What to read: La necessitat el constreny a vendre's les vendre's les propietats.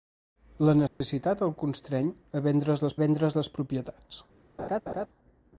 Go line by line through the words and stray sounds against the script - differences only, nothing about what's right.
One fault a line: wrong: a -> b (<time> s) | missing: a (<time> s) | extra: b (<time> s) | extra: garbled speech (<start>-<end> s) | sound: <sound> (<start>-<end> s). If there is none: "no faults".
sound: dropout (0.9-1.0 s)
sound: laugh (4.6-5.1 s)